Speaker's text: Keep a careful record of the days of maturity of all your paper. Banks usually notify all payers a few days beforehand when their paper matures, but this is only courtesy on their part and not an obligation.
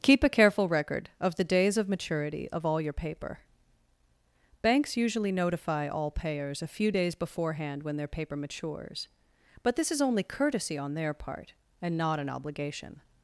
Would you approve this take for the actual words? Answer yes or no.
yes